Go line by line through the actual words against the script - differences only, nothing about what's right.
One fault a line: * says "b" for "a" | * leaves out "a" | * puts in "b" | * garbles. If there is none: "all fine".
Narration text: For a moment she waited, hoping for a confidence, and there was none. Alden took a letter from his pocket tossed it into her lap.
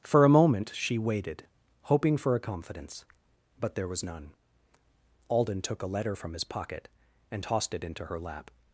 * says "but" for "and"
* puts in "and"